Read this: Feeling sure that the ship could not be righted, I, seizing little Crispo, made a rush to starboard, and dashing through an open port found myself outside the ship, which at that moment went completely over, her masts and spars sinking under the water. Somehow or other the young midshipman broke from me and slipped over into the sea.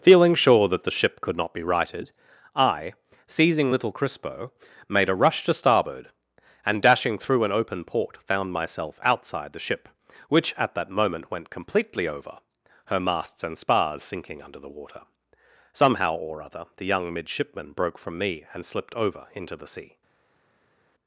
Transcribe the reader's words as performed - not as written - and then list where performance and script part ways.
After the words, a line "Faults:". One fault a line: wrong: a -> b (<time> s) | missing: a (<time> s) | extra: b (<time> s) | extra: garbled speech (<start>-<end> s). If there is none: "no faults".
Feeling sure that the ship could not be righted, I, seizing little Crispo, made a rush to starboard, and dashing through an open port found myself outside the ship, which at that moment went completely over, her masts and spars sinking under the water. Somehow or other the young midshipman broke from me and slipped over into the sea.
Faults:
no faults